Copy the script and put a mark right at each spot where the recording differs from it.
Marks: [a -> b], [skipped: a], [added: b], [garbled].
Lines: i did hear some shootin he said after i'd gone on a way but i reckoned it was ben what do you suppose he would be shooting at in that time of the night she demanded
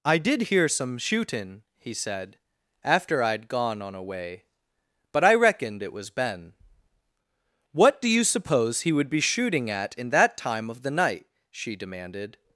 i did hear some shootin he said after i'd gone on a way but i reckoned it was ben what do you suppose he would be shooting at in that time of the night she demanded